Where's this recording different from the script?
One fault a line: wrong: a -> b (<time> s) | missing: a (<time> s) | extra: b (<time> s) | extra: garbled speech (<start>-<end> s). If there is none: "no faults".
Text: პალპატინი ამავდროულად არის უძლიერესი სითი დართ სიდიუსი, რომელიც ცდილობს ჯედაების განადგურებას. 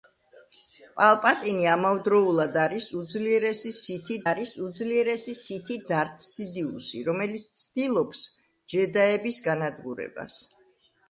extra: არის უძლიერესი სითი (4.3 s)